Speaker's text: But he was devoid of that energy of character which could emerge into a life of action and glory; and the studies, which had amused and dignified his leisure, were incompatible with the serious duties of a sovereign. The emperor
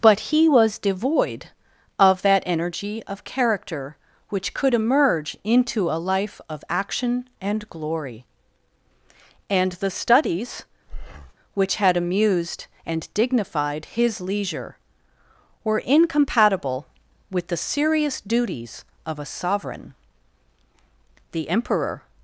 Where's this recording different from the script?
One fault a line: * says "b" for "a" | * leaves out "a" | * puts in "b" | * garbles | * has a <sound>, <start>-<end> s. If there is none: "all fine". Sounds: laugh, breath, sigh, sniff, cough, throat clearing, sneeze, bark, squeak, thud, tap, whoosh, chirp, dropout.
* has a breath, 10.9-11.3 s